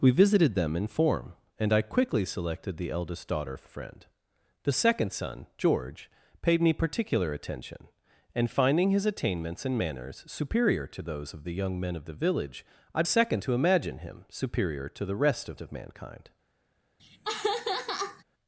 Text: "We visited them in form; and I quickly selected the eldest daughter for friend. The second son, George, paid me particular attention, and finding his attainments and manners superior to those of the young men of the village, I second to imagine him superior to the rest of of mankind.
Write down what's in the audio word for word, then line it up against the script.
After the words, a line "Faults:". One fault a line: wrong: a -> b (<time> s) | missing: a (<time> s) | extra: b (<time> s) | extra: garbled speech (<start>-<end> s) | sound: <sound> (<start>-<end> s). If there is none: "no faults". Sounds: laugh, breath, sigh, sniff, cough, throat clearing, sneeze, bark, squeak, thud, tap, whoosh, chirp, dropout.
"We visited them in form; and I quickly selected the eldest daughter for friend. The second son, George, paid me particular attention, and finding his attainments and manners superior to those of the young men of the village, I second to imagine him superior to the rest of of mankind.
Faults:
sound: laugh (17.0-18.2 s)